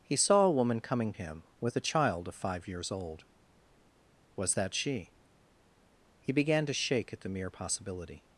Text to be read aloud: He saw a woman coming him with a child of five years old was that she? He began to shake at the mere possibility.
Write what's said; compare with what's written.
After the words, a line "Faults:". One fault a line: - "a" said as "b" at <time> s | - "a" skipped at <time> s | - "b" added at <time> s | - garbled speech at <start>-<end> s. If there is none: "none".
He saw a woman coming him with a child of five years old was that she? He began to shake at the mere possibility.
Faults:
none